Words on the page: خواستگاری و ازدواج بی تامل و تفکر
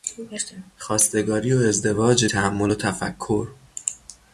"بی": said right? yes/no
no